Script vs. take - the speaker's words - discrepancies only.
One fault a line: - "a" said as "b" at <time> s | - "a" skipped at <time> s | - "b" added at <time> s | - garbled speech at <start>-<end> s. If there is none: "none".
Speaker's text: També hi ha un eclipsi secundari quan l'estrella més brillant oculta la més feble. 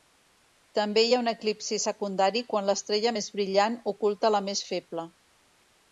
none